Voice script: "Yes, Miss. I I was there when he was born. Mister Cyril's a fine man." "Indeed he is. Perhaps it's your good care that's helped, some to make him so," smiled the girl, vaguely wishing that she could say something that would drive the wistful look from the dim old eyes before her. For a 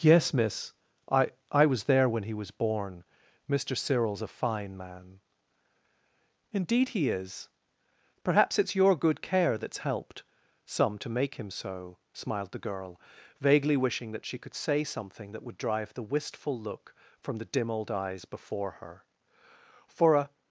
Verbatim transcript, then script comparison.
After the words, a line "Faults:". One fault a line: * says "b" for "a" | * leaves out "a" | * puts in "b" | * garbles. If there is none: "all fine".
"Yes, Miss. I I was there when he was born. Mister Cyril's a fine man." "Indeed he is. Perhaps it's your good care that's helped, some to make him so," smiled the girl, vaguely wishing that she could say something that would drive the wistful look from the dim old eyes before her. For a
Faults:
all fine